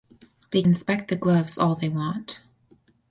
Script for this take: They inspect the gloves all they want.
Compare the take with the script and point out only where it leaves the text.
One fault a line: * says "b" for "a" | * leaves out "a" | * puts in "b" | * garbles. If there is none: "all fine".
all fine